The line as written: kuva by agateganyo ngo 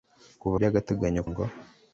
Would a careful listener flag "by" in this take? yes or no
no